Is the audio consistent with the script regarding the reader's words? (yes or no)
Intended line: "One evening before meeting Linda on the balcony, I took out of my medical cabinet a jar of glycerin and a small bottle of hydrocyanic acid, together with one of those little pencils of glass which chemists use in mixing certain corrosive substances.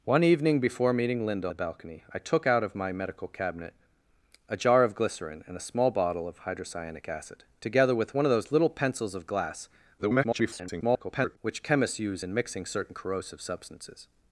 no